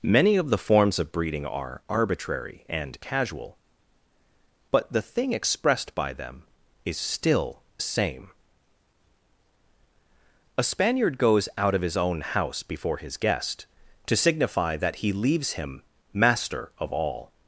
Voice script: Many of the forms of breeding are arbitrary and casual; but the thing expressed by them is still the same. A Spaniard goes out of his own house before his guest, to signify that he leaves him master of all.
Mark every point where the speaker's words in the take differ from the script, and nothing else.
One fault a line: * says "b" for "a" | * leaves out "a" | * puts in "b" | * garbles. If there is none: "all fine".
* leaves out "the"